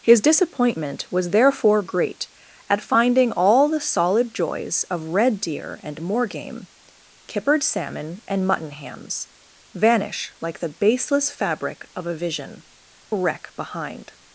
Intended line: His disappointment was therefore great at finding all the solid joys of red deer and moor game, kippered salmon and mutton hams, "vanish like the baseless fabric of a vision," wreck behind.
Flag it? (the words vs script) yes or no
no